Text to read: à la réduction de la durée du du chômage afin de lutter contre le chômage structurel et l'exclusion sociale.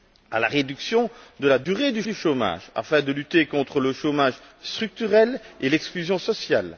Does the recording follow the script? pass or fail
pass